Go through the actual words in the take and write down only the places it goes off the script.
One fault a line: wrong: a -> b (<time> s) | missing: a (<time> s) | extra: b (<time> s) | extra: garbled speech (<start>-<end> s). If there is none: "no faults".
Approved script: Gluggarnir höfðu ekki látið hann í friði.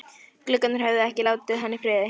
no faults